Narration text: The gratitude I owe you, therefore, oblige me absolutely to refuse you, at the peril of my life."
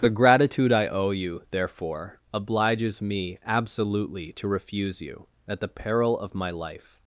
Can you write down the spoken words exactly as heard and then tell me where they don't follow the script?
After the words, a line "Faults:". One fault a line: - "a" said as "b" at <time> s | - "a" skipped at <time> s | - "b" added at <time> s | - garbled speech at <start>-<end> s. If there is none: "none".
The gratitude I owe you, therefore, obliges me absolutely to refuse you, at the peril of my life."
Faults:
- "oblige" said as "obliges" at 2.3 s